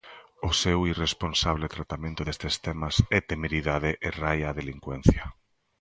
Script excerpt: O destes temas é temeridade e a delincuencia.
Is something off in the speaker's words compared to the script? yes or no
yes